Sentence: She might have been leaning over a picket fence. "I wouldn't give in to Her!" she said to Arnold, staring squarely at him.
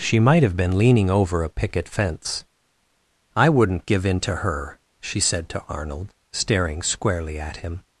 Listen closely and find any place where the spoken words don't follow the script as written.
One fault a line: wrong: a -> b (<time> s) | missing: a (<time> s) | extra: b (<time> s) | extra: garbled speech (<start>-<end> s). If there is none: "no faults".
no faults